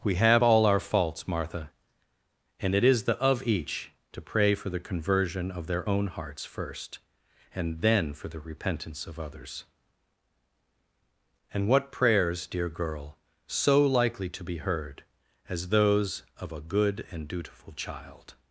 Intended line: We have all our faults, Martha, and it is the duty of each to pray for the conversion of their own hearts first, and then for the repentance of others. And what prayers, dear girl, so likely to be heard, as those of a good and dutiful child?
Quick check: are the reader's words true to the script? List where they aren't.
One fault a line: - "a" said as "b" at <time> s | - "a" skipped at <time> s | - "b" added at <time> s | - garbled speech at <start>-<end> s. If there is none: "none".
- "duty" skipped at 3.2 s